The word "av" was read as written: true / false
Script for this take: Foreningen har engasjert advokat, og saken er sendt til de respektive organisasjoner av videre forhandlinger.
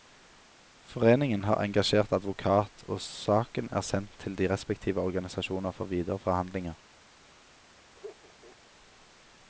false